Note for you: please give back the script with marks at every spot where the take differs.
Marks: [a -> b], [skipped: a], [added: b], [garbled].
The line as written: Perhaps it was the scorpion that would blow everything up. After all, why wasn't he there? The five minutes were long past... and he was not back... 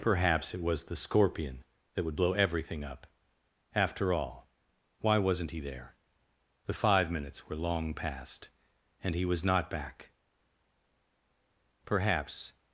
Perhaps it was the scorpion that would blow everything up. After all, why wasn't he there? The five minutes were long past... and he was not back... [added: Perhaps]